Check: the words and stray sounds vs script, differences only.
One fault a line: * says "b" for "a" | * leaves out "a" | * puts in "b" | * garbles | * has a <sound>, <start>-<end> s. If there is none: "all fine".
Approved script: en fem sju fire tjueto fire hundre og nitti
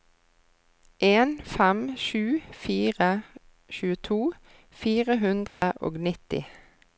* has a dropout, 5.5-5.6 s